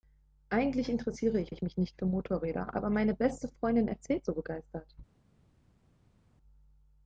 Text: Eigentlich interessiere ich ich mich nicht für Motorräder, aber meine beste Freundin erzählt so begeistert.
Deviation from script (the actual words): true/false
false